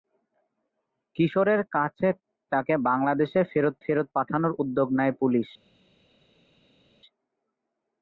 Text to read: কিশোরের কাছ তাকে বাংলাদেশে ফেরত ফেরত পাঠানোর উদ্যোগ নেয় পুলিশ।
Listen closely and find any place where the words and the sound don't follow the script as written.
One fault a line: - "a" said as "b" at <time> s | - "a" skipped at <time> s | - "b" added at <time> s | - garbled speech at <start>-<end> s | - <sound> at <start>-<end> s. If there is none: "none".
none